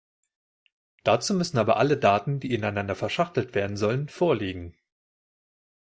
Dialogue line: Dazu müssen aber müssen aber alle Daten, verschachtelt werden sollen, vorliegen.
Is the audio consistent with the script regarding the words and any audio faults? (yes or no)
no